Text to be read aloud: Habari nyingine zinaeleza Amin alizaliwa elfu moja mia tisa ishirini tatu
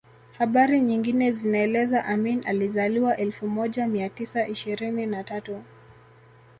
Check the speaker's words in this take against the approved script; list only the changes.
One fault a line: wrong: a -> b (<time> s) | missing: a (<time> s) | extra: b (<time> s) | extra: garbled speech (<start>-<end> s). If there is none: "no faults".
extra: na (5.1 s)